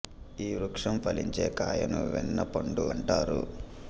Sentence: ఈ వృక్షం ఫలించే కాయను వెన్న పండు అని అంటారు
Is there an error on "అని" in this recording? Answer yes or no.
yes